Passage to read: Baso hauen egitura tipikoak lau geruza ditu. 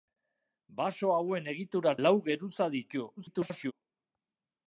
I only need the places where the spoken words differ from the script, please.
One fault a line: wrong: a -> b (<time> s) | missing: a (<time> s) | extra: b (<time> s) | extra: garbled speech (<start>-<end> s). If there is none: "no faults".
missing: tipikoak (1.9 s)
extra: garbled speech (3.2-3.7 s)